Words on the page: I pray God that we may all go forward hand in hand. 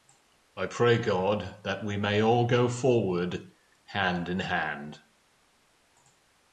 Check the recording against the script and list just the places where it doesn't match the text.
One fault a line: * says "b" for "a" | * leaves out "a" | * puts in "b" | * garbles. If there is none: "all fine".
all fine